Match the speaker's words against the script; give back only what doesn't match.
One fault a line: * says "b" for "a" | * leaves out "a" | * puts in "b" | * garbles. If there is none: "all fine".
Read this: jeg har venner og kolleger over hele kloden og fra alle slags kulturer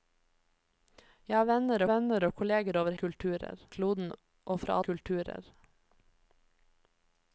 * puts in "venner"
* says "kulturer" for "hele"
* leaves out "alle slags"